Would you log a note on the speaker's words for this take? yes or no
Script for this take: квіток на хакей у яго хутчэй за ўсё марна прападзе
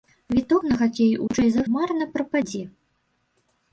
yes